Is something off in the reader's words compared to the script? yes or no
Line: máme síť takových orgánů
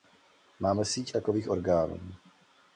no